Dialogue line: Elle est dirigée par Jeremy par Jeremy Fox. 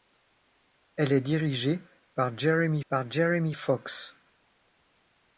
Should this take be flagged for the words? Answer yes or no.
no